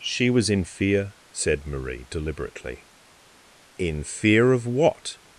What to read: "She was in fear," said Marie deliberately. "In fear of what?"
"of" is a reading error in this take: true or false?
false